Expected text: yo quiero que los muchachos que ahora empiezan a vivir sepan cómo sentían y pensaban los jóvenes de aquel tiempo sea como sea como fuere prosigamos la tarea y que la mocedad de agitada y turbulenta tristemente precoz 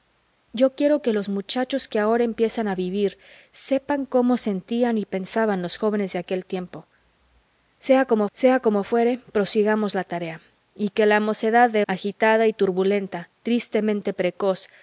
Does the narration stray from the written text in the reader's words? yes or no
no